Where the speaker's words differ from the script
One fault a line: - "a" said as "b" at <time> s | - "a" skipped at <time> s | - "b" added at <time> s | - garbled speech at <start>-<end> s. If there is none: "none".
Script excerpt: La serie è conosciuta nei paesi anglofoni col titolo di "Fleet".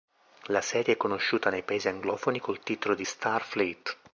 - "Star" added at 3.0 s